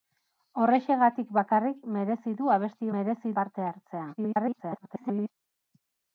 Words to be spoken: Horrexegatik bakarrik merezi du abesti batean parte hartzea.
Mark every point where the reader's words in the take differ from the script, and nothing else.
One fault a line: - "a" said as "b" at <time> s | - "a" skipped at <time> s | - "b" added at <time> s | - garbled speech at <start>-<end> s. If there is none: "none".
- "batean" said as "merezi" at 3.0 s
- garbled speech at 4.2-5.3 s